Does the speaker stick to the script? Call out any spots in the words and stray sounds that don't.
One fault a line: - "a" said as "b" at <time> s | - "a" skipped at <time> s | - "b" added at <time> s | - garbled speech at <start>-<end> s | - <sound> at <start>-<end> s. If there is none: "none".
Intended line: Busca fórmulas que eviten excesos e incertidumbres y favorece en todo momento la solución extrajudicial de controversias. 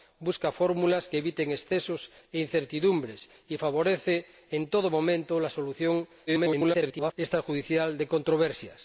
- garbled speech at 6.3-7.1 s